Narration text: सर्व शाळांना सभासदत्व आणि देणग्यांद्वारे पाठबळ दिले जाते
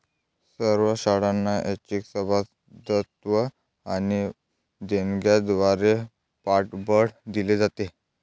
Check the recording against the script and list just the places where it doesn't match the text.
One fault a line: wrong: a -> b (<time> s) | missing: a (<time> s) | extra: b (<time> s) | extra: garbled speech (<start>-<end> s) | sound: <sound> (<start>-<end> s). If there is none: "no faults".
extra: ऐच्छिक (1.6 s)